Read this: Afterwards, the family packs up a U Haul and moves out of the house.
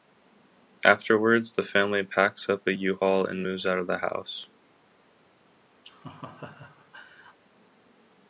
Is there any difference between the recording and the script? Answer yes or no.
no